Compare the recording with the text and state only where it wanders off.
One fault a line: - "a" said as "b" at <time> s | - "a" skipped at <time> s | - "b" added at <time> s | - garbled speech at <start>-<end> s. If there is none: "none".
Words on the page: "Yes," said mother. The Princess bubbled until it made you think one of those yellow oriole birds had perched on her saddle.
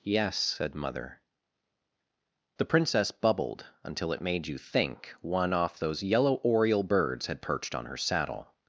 - "of" said as "off" at 5.5 s